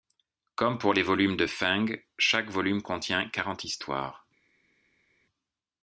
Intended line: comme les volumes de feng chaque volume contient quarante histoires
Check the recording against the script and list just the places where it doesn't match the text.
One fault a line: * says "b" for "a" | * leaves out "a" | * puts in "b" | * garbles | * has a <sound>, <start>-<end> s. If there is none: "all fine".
* puts in "pour"